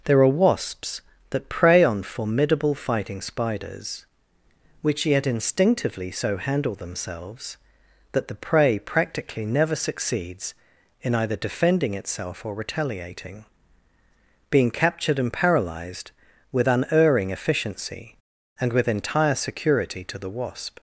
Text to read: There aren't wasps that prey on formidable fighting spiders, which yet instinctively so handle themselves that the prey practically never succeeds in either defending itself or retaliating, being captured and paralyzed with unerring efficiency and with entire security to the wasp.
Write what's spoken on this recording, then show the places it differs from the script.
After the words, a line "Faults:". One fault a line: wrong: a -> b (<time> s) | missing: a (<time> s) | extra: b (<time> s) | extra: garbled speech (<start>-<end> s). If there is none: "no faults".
There are wasps that prey on formidable fighting spiders, which yet instinctively so handle themselves that the prey practically never succeeds in either defending itself or retaliating, being captured and paralyzed with unerring efficiency and with entire security to the wasp.
Faults:
wrong: aren't -> are (0.2 s)